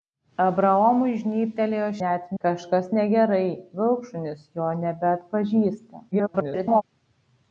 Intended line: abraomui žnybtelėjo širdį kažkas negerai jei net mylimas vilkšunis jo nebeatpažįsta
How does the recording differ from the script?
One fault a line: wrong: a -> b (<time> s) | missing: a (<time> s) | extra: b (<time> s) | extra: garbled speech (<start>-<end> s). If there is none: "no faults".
wrong: širdį -> net (2.0 s)
missing: jei net mylimas (3.4 s)
extra: garbled speech (6.1-6.8 s)